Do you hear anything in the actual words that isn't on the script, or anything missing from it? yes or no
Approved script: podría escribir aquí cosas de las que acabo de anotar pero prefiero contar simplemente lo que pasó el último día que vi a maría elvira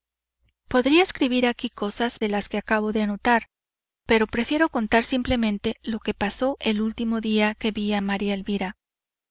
no